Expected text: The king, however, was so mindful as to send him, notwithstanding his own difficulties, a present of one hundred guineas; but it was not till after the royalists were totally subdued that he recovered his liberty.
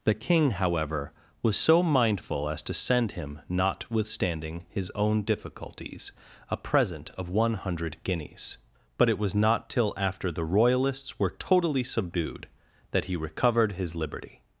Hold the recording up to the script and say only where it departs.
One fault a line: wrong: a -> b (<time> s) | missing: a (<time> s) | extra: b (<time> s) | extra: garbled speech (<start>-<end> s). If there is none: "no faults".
no faults